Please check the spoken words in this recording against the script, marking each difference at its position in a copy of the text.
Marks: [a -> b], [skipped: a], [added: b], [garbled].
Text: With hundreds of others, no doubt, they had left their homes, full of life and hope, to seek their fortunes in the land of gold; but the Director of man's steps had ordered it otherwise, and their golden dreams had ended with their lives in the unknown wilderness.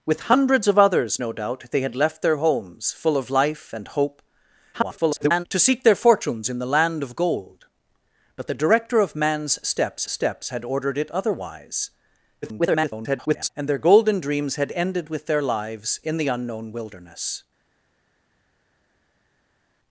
With hundreds of others, no doubt, they had left their homes, full of life and hope, [garbled] to seek their fortunes in the land of gold; but the Director of man's steps [added: steps] had ordered it otherwise, [garbled] and their golden dreams had ended with their lives in the unknown wilderness.